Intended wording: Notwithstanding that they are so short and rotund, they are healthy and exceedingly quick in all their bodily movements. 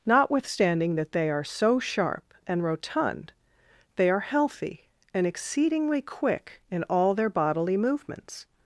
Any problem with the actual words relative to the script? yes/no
yes